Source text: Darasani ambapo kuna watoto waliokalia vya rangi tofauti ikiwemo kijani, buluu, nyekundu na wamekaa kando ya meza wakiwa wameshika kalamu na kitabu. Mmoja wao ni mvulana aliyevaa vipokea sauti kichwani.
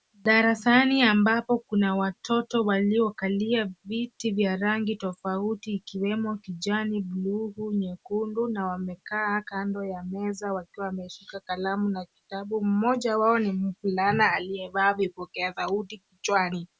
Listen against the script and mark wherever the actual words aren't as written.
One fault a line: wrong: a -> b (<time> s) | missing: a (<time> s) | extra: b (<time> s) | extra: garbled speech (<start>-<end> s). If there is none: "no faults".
extra: viti (3.9 s)